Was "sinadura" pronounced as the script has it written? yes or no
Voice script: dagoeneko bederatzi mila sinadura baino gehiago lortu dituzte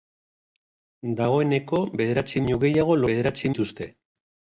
no